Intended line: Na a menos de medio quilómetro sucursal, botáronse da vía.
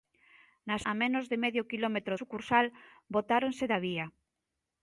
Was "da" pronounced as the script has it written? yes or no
yes